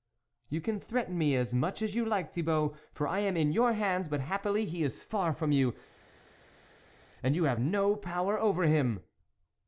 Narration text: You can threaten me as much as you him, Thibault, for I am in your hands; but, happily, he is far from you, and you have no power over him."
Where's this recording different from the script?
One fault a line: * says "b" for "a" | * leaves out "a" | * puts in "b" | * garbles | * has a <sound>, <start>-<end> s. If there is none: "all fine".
* says "like" for "him"